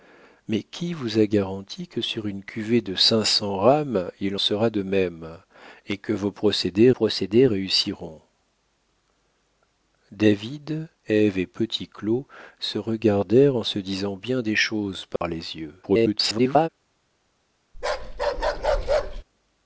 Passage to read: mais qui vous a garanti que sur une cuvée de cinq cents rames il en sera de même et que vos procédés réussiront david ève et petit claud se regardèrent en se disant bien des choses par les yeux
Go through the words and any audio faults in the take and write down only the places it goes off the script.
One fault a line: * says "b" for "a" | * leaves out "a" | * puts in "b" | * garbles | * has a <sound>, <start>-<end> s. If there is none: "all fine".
* leaves out "en"
* puts in "procédés"
* has a dropout, 15.2-15.2 s
* garbles
* has a bark, 17.7-19.2 s